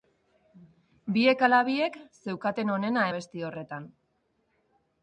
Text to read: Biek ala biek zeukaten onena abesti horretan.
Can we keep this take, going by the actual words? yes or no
yes